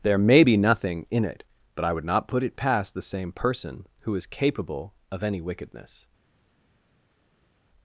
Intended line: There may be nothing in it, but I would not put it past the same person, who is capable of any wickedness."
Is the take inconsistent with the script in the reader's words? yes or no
no